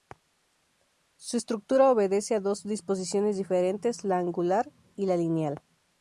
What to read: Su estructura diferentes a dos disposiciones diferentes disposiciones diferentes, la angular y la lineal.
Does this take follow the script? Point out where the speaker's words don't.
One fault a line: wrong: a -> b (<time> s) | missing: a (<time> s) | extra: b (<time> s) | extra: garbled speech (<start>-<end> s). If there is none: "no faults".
wrong: diferentes -> obedece (1.9 s)
missing: disposiciones diferentes (4.0 s)